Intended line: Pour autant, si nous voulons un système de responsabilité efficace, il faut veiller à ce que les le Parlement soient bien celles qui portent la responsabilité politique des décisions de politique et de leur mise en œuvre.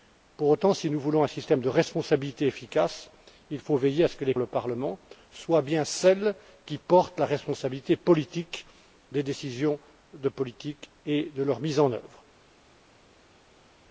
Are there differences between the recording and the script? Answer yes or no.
no